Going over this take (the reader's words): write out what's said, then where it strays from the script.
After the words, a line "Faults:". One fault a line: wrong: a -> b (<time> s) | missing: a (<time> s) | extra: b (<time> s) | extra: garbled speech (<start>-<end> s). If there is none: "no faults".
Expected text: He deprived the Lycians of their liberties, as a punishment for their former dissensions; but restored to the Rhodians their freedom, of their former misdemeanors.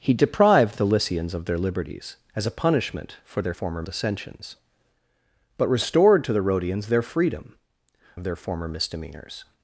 He deprived the Lycians of their liberties, as a punishment for their former dissensions; but restored to the Rhodians their freedom, of their former misdemeanors.
Faults:
no faults